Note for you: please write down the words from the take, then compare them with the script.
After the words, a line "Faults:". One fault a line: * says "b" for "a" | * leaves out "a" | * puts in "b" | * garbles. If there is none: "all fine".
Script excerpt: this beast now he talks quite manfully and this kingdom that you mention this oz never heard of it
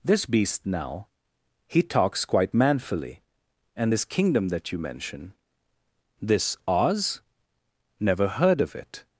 this beast now he talks quite manfully and this kingdom that you mention this oz never heard of it
Faults:
all fine